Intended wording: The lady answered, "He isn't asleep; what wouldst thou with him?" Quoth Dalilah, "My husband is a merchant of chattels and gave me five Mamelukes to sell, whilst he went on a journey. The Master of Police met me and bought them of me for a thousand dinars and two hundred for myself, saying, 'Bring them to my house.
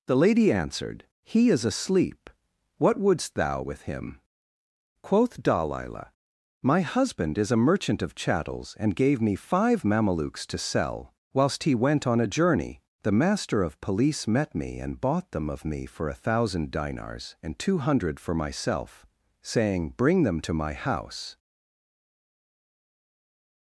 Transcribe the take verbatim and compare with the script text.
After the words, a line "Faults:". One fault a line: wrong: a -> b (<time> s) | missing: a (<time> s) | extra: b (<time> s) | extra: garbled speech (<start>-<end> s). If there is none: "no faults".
The lady answered, "He is asleep; what wouldst thou with him?" Quoth Dalilah, "My husband is a merchant of chattels and gave me five Mamelukes to sell, whilst he went on a journey. The Master of Police met me and bought them of me for a thousand dinars and two hundred for myself, saying, 'Bring them to my house.
Faults:
wrong: isn't -> is (1.5 s)